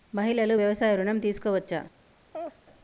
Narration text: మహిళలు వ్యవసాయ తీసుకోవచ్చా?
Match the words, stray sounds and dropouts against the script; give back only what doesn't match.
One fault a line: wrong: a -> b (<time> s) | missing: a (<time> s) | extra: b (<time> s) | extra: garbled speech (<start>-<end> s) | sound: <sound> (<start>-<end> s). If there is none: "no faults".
extra: ఋణం (0.9 s)
sound: laugh (2.3-2.6 s)